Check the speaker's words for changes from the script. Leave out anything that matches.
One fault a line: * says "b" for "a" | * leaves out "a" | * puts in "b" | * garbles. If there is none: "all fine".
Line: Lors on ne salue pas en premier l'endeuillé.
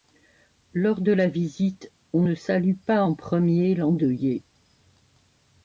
* puts in "de la visite"